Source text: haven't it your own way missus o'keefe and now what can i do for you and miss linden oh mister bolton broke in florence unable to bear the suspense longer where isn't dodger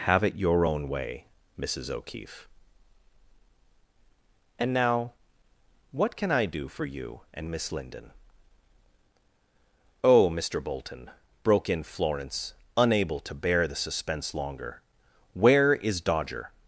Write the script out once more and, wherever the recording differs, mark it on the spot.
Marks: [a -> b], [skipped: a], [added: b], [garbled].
[haven't -> have] it your own way missus o'keefe and now what can i do for you and miss linden oh mister bolton broke in florence unable to bear the suspense longer where [isn't -> is] dodger